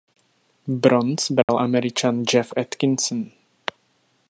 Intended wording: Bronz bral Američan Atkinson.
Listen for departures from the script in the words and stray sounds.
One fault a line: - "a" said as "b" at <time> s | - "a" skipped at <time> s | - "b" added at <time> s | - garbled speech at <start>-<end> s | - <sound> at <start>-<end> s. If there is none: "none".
- dropout at 1.4-1.5 s
- "Jeff" added at 2.2 s